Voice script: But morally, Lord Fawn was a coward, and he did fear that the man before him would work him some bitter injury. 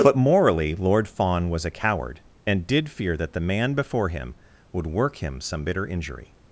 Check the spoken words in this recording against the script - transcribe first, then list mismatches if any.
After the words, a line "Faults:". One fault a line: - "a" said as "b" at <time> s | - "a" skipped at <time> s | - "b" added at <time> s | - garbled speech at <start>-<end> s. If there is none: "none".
But morally, Lord Fawn was a coward, and did fear that the man before him would work him some bitter injury.
Faults:
- "he" skipped at 2.7 s